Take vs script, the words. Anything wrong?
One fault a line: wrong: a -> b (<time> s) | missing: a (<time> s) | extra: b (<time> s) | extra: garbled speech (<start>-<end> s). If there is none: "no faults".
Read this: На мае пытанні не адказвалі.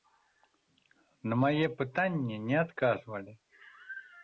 no faults